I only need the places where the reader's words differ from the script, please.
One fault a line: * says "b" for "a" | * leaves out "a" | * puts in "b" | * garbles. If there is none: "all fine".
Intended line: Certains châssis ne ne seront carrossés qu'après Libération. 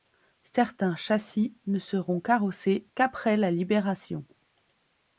* leaves out "ne"
* puts in "la"